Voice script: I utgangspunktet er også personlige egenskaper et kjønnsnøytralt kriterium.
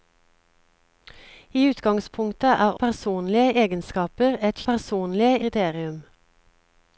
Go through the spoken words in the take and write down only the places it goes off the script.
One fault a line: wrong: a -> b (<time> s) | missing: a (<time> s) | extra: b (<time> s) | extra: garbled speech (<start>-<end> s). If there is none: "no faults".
missing: også (2.7 s)
wrong: kjønnsnøytralt -> personlige (4.7 s)